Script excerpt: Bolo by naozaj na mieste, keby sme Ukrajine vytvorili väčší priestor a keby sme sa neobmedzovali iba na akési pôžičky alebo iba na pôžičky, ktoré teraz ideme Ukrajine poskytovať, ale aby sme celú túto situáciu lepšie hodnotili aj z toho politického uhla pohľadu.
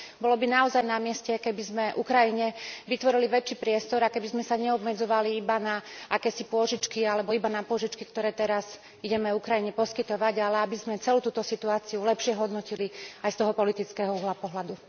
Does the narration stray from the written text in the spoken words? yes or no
no